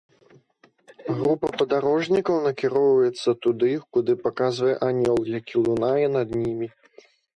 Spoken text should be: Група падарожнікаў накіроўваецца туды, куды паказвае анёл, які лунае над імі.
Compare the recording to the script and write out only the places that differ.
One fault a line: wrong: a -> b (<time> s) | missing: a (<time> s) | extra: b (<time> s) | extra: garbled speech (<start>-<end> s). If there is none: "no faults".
no faults